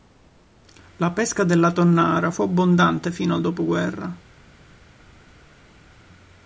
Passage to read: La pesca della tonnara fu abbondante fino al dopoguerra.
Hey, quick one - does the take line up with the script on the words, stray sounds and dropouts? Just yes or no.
yes